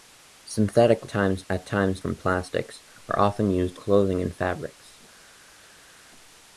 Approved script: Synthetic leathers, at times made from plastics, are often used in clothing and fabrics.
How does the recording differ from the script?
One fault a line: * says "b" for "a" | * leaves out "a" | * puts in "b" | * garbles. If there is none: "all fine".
* says "times" for "leathers"
* leaves out "made"
* leaves out "in"